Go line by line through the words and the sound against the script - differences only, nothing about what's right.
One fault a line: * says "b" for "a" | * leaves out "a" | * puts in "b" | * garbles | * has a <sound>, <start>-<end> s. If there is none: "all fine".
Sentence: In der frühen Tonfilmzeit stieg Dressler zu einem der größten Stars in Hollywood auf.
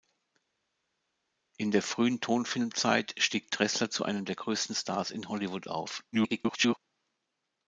* garbles